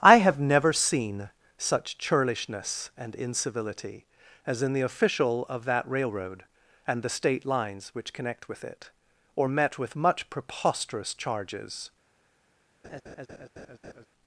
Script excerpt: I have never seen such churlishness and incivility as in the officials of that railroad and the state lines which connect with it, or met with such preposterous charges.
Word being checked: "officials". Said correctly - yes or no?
no